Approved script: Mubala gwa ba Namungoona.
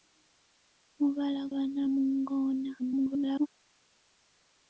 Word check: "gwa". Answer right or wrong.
wrong